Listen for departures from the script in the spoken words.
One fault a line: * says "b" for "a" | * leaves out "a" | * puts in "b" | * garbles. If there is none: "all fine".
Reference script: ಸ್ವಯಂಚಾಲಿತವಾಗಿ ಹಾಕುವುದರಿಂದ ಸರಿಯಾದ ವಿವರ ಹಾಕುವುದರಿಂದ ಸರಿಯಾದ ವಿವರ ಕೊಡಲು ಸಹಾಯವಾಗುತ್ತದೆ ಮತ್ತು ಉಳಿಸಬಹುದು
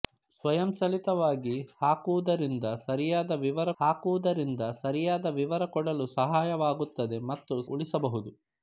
all fine